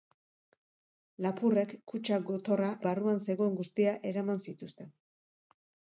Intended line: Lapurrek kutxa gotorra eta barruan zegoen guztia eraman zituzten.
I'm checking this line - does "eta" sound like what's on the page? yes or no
no